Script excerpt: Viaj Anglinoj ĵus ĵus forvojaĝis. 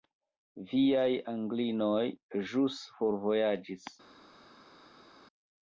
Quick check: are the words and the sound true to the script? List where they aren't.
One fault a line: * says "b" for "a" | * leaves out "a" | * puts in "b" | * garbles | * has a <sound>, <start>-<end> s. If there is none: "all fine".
* leaves out "ĵus"